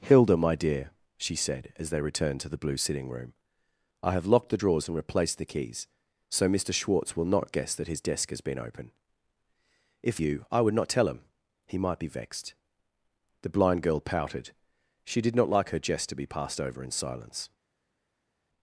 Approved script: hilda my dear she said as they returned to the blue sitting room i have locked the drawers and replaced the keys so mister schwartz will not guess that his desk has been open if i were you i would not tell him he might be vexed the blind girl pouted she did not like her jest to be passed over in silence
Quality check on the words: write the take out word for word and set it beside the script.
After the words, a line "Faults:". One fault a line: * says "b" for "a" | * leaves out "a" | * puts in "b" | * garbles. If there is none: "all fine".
hilda my dear she said as they returned to the blue sitting room i have locked the drawers and replaced the keys so mister schwartz will not guess that his desk has been open if you i would not tell him he might be vexed the blind girl pouted she did not like her jest to be passed over in silence
Faults:
* leaves out "i were"